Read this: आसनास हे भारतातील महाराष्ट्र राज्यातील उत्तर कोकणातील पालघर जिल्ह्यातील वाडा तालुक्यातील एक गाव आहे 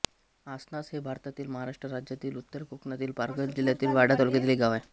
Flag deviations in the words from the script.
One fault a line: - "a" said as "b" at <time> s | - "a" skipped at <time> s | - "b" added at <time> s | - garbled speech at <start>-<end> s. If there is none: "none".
none